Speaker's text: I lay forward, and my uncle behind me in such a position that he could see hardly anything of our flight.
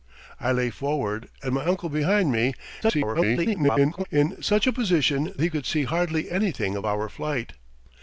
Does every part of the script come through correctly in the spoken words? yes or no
no